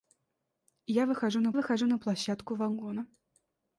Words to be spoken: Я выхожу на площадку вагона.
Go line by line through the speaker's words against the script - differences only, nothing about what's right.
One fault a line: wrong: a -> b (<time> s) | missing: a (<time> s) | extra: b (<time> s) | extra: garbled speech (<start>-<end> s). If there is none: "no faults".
extra: выхожу на (1.5 s)